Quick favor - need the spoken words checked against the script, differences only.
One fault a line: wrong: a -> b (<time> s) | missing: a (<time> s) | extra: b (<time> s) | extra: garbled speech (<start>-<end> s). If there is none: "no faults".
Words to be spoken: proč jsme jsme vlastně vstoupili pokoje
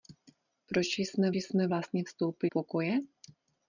no faults